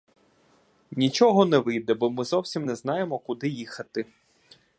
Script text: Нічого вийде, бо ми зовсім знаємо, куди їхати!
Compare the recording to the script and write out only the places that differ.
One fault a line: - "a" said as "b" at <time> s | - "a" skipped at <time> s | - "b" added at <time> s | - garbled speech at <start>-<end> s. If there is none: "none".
- "не" added at 1.4 s
- "не" added at 2.6 s